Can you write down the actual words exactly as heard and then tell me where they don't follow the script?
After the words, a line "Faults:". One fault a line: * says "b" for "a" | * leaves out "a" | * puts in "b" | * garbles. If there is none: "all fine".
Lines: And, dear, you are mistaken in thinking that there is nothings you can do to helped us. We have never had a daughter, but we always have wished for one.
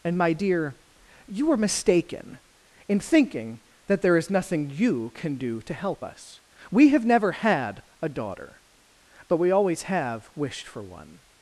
And, my dear, you are mistaken in thinking that there is nothing you can do to help us. We have never had a daughter, but we always have wished for one.
Faults:
* puts in "my"
* says "nothing" for "nothings"
* says "help" for "helped"